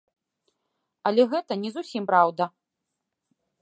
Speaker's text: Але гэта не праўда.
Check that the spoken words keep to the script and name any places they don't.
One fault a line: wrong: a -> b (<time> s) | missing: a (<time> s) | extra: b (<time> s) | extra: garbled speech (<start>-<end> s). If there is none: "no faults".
extra: зусім (1.8 s)